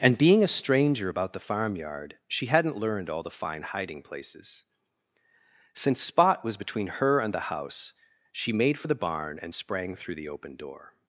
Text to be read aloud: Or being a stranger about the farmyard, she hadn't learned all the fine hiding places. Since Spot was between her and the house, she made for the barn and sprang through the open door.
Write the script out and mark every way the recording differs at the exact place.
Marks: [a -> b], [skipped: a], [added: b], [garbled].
[Or -> And] being a stranger about the farmyard, she hadn't learned all the fine hiding places. Since Spot was between her and the house, she made for the barn and sprang through the open door.